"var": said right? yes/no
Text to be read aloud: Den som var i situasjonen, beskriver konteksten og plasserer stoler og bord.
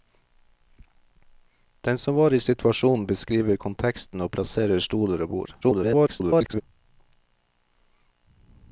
yes